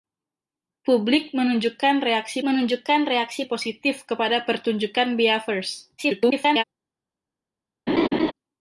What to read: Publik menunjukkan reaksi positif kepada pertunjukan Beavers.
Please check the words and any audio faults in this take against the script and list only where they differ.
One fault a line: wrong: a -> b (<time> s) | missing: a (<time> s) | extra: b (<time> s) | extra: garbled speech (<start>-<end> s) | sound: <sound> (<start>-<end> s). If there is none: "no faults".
extra: menunjukkan reaksi (2.5 s)
extra: garbled speech (6.0-6.6 s)
sound: laugh (7.9-8.3 s)